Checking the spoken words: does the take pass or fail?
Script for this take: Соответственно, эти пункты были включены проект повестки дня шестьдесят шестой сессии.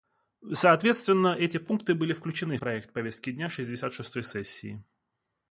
pass